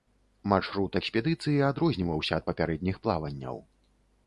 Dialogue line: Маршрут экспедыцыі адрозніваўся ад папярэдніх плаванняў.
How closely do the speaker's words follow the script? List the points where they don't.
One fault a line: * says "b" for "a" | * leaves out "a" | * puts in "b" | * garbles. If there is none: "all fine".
all fine